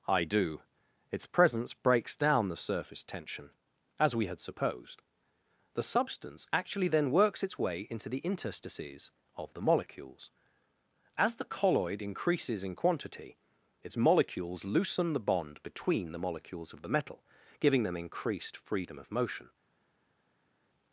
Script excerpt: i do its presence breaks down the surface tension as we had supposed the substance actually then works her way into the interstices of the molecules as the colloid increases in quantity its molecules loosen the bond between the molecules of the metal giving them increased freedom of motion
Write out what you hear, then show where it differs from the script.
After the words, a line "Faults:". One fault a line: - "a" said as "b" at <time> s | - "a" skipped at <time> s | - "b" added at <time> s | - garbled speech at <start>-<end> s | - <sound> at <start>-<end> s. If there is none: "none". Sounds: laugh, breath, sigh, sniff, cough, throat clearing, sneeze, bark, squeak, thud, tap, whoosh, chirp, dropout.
i do its presence breaks down the surface tension as we had supposed the substance actually then works its way into the interstices of the molecules as the colloid increases in quantity its molecules loosen the bond between the molecules of the metal giving them increased freedom of motion
Faults:
- "her" said as "its" at 7.4 s